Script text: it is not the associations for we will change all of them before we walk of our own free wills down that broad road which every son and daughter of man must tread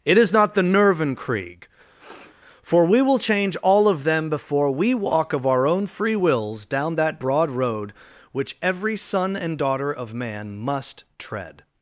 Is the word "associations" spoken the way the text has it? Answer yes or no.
no